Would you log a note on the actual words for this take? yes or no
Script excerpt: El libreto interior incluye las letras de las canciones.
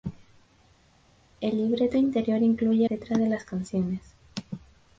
yes